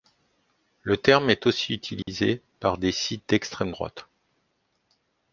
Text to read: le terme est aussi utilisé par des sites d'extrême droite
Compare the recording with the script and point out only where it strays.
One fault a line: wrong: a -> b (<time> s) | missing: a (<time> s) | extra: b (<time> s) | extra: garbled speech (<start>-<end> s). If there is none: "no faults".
no faults